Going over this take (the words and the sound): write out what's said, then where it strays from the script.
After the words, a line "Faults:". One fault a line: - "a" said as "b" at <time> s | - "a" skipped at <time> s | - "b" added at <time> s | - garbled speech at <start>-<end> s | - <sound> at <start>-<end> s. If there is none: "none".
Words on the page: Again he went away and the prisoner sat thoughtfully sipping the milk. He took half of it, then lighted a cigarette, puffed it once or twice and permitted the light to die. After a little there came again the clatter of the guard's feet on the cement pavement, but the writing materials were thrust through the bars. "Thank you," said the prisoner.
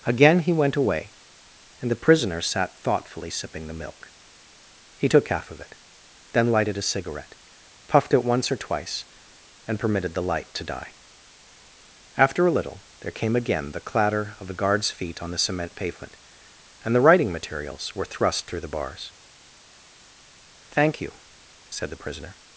Again he went away and the prisoner sat thoughtfully sipping the milk. He took half of it, then lighted a cigarette, puffed it once or twice and permitted the light to die. After a little there came again the clatter of the guard's feet on the cement pavement, and the writing materials were thrust through the bars. "Thank you," said the prisoner.
Faults:
- "but" said as "and" at 16.8 s